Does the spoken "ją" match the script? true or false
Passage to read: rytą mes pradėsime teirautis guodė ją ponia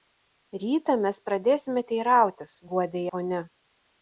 false